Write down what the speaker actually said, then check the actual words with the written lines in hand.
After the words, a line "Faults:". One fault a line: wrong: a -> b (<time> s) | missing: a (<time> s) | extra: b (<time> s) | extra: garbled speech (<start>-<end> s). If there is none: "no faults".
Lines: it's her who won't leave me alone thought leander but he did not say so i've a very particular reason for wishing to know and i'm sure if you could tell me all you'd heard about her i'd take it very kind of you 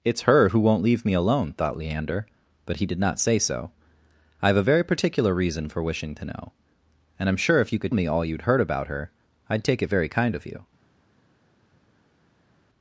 it's her who won't leave me alone thought leander but he did not say so i've a very particular reason for wishing to know and i'm sure if you could me all you'd heard about her i'd take it very kind of you
Faults:
missing: tell (7.9 s)